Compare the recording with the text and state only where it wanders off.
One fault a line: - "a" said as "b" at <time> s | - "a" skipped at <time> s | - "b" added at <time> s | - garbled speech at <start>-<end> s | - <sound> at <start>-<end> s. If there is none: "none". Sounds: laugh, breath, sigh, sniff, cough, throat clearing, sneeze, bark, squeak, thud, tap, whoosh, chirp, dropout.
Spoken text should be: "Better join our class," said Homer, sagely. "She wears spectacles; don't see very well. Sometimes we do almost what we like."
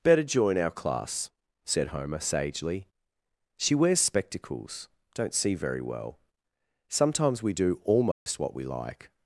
- dropout at 8.1-8.3 s